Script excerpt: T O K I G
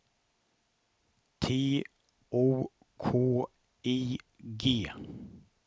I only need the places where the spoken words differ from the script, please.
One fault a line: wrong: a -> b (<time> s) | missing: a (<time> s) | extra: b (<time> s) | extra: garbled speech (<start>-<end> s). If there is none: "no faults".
no faults